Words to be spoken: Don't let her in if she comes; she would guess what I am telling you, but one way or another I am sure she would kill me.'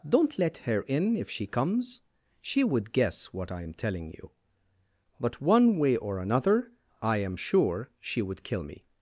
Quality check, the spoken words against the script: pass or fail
pass